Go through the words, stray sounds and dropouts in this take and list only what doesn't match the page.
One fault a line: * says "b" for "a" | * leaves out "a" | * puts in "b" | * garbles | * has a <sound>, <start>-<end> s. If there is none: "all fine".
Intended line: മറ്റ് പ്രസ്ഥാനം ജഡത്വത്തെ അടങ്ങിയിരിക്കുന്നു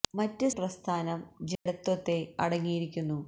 * has a dropout, 1.5-1.7 s